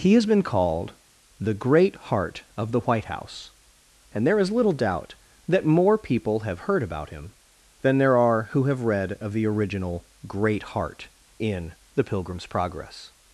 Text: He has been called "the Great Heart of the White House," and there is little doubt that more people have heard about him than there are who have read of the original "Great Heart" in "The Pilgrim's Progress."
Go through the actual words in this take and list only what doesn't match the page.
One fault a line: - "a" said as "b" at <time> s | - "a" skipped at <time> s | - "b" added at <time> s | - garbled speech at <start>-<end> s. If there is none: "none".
none